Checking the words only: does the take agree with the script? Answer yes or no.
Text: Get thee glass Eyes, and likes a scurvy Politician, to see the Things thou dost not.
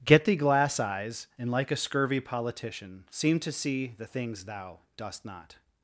no